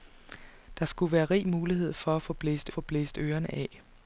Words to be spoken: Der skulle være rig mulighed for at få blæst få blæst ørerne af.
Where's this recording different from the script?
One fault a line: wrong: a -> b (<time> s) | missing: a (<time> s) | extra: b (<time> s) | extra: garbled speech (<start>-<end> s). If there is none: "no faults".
no faults